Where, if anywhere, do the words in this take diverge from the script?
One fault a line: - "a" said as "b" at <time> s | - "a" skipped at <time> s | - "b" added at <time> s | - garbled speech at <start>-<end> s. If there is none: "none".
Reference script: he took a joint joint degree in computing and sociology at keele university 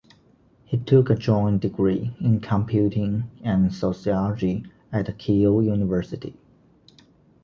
- "joint" skipped at 1.6 s